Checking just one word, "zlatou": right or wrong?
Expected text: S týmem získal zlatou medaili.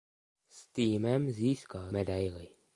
wrong